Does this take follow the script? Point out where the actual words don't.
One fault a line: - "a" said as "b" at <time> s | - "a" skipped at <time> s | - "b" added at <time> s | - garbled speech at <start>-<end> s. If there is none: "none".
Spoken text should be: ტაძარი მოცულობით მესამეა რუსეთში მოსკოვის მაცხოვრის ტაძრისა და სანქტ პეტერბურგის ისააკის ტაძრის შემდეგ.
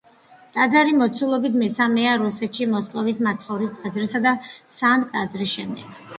- "პეტერბურგის ისააკის" skipped at 5.1 s